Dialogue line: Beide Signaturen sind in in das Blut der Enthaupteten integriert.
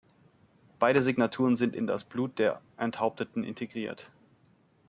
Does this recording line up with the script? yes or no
no